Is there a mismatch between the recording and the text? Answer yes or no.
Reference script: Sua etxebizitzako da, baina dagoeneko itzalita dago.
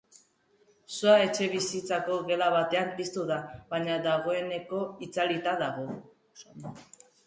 yes